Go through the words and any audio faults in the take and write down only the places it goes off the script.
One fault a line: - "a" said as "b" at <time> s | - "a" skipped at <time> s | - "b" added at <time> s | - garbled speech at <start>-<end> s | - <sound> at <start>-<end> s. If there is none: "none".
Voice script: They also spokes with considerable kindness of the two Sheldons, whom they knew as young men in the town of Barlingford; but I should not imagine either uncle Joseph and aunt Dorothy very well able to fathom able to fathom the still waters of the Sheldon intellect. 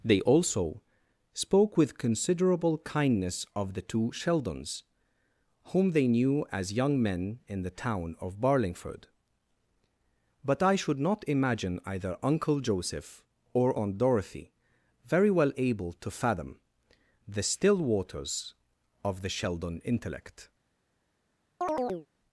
- "spokes" said as "spoke" at 1.3 s
- "and" said as "or" at 13.5 s
- "able to fathom" skipped at 16.6 s
- chirp at 21.6-22.1 s